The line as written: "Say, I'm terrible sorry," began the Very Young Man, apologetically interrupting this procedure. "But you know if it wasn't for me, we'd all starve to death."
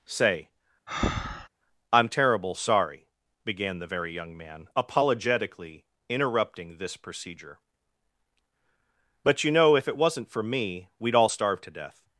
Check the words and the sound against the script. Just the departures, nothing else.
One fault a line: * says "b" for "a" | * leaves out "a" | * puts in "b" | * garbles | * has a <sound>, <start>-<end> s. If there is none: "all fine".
* has a breath, 0.9-1.5 s